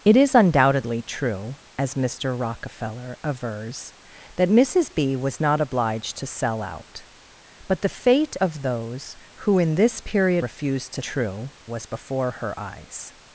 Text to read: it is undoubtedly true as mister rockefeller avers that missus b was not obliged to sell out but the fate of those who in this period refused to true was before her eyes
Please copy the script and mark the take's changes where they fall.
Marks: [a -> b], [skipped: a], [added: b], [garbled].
it is undoubtedly true as mister rockefeller avers that missus b was not obliged to sell out but the fate of those who in this period refused to true was before her eyes